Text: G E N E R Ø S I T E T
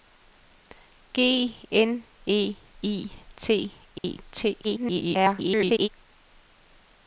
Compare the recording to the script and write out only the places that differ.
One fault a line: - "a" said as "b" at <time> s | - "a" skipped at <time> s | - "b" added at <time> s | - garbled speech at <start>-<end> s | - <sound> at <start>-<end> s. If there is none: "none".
- "E" skipped at 1.6 s
- "R Ø S" skipped at 2.6 s
- dropout at 4.0-4.0 s
- garbled speech at 4.6-5.9 s